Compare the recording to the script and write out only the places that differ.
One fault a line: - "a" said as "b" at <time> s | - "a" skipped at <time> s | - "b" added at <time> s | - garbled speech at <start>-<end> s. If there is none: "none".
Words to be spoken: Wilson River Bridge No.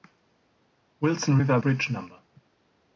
none